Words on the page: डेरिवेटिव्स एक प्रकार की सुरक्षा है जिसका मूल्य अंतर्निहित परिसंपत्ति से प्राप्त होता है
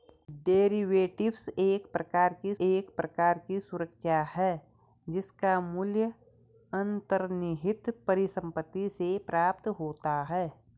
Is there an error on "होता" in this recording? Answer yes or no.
no